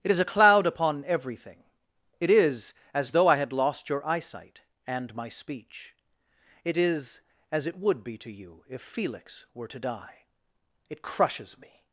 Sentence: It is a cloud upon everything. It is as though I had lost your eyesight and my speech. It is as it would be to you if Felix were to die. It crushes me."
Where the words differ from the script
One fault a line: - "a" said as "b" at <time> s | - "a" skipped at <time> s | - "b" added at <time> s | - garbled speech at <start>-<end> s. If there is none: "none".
none